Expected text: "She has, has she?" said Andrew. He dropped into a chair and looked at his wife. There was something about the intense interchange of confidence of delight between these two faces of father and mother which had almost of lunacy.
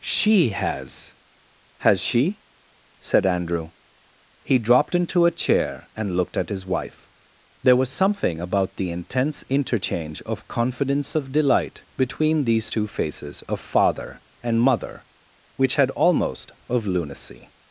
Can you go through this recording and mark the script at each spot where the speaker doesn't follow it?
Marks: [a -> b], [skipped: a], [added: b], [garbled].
"She has, has she?" said Andrew. He dropped into a chair and looked at his wife. There was something about the intense interchange of confidence of delight between these two faces of father and mother which had almost of lunacy.